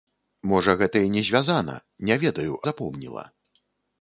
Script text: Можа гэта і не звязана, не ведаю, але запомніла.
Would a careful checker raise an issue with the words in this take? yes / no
yes